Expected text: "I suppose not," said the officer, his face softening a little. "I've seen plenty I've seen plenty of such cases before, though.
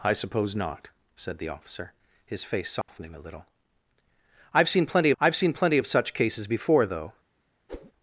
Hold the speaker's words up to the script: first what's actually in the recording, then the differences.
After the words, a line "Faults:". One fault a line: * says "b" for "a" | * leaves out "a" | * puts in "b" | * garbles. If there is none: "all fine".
"I suppose not," said the officer, his face softening a little. "I've seen plenty I've seen plenty of such cases before, though.
Faults:
all fine